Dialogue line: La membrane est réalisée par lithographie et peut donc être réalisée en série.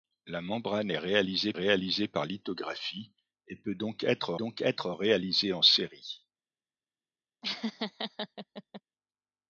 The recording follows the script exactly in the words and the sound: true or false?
false